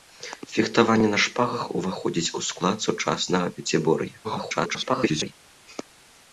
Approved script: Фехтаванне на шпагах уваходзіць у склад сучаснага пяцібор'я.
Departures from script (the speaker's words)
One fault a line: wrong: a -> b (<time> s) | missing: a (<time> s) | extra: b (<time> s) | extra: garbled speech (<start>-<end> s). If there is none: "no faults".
extra: garbled speech (4.2-5.3 s)